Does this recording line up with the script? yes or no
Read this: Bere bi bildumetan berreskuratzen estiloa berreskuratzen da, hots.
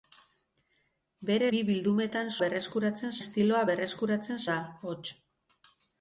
yes